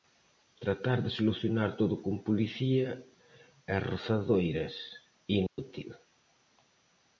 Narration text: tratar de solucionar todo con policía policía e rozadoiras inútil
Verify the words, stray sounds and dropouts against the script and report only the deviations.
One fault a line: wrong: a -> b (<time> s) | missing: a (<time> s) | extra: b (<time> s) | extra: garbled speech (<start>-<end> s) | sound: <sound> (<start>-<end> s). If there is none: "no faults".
missing: policía (2.9 s)
sound: dropout (5.5-5.6 s)